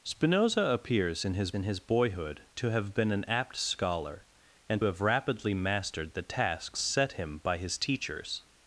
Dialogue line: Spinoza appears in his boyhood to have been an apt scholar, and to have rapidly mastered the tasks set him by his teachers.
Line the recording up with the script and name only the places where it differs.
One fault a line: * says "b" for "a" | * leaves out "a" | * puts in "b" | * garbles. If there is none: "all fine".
* puts in "in his"
* leaves out "to"